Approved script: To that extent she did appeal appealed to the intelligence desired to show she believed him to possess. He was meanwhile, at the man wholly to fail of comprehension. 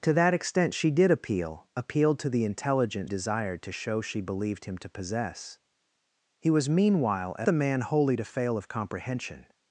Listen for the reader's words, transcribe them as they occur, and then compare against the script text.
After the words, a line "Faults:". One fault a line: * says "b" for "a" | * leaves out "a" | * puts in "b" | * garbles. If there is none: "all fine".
To that extent she did appeal appealed to the intelligence desired to show she believed him to possess. He was meanwhile, at the man wholly to fail of comprehension.
Faults:
all fine